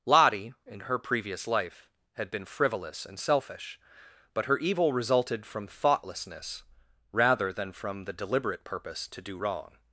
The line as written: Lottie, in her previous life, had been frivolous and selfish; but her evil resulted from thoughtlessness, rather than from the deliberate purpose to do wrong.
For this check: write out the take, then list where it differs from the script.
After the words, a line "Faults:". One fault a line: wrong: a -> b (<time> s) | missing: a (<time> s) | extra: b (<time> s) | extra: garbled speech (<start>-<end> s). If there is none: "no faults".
Lottie, in her previous life, had been frivolous and selfish; but her evil resulted from thoughtlessness, rather than from the deliberate purpose to do wrong.
Faults:
no faults